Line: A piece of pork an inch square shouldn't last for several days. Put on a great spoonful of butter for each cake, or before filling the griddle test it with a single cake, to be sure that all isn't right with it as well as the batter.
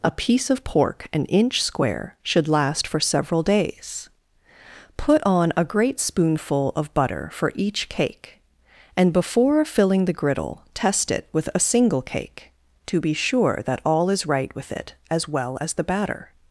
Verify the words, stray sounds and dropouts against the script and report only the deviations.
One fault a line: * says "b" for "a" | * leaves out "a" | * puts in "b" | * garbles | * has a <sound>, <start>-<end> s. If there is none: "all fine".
* says "should" for "shouldn't"
* says "and" for "or"
* says "is" for "isn't"